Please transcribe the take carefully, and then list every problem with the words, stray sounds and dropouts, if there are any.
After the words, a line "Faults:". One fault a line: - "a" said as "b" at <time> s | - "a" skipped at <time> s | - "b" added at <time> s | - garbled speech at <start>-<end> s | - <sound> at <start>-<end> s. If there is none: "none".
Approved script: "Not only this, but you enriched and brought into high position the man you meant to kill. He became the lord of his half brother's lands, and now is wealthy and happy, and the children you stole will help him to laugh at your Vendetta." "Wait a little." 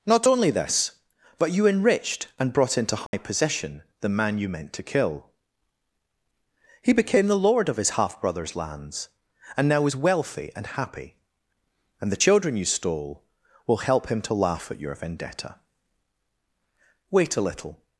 "Not only this, but you enriched and brought into high position the man you meant to kill. He became the lord of his half brother's lands, and now is wealthy and happy, and the children you stole will help him to laugh at your Vendetta." "Wait a little."
Faults:
- dropout at 3.1-3.1 s